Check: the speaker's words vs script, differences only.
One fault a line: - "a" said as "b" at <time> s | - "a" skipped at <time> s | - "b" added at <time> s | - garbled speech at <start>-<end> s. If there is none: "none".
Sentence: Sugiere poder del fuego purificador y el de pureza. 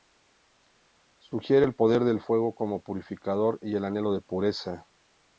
- "el" added at 1.6 s
- "como" added at 2.5 s
- "anhelo" added at 3.8 s